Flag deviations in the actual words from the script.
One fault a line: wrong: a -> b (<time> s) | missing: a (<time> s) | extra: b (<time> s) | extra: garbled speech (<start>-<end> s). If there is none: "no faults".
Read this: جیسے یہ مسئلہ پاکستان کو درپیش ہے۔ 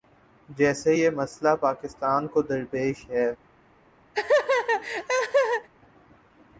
no faults